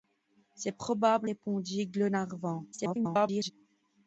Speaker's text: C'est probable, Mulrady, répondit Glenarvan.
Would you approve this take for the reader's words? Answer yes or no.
no